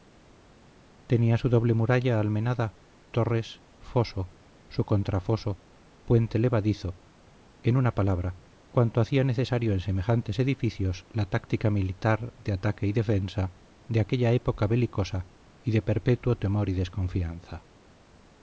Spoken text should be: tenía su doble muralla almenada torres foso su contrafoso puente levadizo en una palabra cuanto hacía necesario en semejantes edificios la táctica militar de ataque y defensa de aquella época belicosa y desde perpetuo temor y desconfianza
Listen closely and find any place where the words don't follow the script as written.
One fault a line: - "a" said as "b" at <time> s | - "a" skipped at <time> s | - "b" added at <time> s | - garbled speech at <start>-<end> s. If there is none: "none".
- "desde" said as "de" at 15.7 s